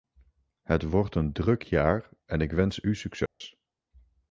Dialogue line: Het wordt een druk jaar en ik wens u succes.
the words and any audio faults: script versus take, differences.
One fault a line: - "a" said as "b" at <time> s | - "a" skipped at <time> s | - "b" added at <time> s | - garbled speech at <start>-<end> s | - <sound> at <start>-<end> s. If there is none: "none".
- dropout at 3.3-3.4 s